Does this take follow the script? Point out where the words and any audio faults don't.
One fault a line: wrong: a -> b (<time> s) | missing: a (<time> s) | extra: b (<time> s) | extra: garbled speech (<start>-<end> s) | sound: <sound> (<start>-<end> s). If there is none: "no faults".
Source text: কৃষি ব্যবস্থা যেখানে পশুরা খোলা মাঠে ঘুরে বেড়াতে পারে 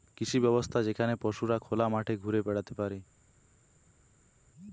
no faults